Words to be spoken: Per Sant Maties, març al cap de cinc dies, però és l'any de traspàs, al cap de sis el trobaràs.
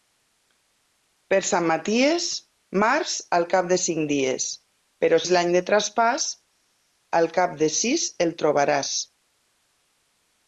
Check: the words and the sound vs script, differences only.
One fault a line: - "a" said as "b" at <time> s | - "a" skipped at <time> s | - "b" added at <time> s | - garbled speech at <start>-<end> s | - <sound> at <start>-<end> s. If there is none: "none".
none